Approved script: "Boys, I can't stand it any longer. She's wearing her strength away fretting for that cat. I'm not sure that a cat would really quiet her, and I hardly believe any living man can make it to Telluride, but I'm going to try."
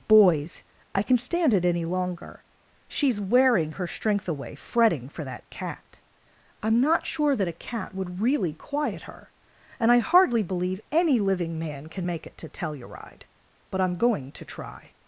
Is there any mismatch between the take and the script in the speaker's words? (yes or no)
yes